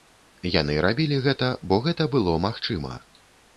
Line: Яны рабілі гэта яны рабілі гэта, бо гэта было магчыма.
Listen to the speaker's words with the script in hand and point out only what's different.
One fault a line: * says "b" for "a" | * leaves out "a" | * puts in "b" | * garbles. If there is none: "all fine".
* leaves out "яны рабілі гэта"